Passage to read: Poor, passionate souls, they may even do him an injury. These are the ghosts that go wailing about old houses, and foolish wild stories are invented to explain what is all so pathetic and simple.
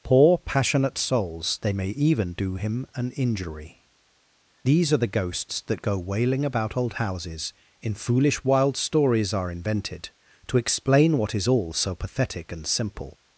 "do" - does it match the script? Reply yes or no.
yes